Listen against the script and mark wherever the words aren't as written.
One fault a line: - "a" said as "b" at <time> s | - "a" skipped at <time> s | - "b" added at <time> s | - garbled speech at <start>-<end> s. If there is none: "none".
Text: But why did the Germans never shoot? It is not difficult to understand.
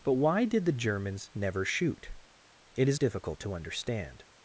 - "not" skipped at 3.0 s